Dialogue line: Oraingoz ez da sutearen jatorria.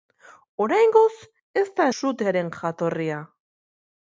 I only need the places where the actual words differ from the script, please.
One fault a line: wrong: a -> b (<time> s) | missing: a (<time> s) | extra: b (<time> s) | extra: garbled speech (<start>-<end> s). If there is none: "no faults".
no faults